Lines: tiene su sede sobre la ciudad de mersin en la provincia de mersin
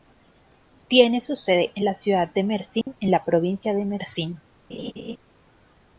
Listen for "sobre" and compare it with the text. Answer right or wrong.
wrong